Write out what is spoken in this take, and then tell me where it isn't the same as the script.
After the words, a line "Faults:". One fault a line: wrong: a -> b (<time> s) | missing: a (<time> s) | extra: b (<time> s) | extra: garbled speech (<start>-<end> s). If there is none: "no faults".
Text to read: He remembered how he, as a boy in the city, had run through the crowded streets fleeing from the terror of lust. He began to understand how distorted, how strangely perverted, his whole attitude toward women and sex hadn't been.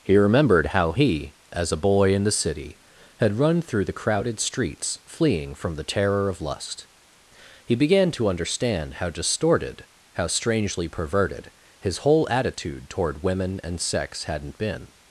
He remembered how he, as a boy in the city, had run through the crowded streets fleeing from the terror of lust. He began to understand how distorted, how strangely perverted, his whole attitude toward women and sex hadn't been.
Faults:
no faults